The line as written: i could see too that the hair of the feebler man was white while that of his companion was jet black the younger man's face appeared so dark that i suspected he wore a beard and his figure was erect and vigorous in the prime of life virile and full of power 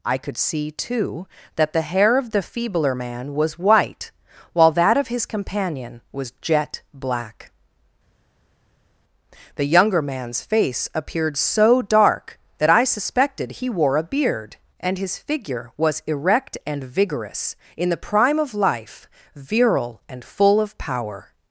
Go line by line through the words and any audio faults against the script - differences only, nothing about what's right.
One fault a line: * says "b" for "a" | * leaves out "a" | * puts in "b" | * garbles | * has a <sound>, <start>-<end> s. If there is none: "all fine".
all fine